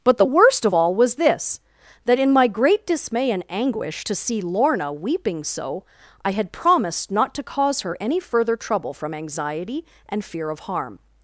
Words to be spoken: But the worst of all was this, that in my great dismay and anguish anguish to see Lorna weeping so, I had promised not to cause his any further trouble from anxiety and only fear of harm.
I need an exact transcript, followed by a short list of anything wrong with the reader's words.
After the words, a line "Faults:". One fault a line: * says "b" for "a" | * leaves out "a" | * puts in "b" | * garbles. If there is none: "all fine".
But the worst of all was this, that in my great dismay and anguish to see Lorna weeping so, I had promised not to cause her any further trouble from anxiety and fear of harm.
Faults:
* leaves out "anguish"
* says "her" for "his"
* leaves out "only"